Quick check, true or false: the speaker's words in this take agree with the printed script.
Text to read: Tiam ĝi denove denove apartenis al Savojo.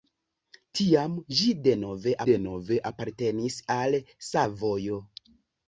true